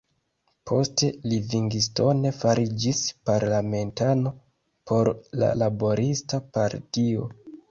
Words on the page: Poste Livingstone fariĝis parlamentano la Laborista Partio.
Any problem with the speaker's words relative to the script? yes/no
yes